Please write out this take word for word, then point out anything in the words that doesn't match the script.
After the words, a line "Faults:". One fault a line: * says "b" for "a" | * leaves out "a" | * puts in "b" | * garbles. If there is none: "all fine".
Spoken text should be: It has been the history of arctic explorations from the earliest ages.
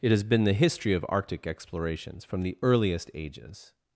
It has been the history of arctic explorations from the earliest ages.
Faults:
all fine